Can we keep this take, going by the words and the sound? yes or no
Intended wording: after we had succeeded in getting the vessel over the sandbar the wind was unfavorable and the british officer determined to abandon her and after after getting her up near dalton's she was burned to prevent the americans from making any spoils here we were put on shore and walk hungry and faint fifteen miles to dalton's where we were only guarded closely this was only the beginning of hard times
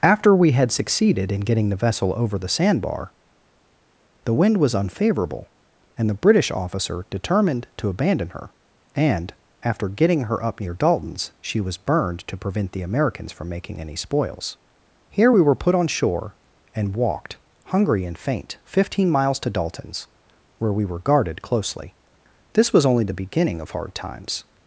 no